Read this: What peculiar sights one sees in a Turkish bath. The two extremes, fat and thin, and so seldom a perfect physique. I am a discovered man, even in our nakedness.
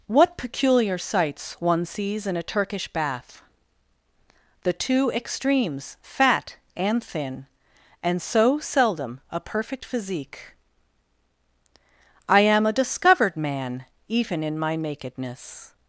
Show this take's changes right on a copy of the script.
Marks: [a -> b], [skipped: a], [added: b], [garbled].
What peculiar sights one sees in a Turkish bath. The two extremes, fat and thin, and so seldom a perfect physique. I am a discovered man, even in [our -> my] nakedness.